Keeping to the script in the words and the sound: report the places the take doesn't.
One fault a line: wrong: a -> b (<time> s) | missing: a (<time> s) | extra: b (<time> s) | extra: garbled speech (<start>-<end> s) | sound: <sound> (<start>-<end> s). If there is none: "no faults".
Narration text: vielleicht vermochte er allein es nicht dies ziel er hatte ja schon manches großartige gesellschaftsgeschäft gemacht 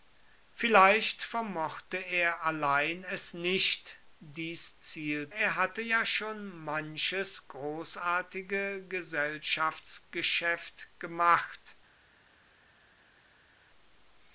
no faults